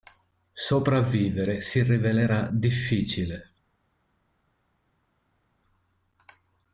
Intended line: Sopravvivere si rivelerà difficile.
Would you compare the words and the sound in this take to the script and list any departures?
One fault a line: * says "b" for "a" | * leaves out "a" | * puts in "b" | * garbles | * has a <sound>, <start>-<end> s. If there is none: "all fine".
all fine